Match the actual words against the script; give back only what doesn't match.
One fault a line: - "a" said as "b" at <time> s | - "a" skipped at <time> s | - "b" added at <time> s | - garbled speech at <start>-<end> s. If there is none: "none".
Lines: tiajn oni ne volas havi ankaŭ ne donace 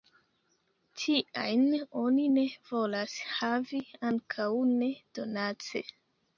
none